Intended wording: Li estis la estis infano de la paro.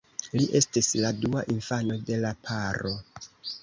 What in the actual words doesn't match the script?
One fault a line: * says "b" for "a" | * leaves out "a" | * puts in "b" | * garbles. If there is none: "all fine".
* says "dua" for "estis"